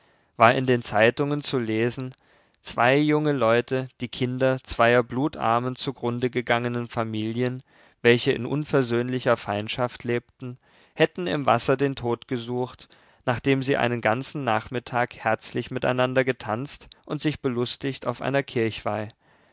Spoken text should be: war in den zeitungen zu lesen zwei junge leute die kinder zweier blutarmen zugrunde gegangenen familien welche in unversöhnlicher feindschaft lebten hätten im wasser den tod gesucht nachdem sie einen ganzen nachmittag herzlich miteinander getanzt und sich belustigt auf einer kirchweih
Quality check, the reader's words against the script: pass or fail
pass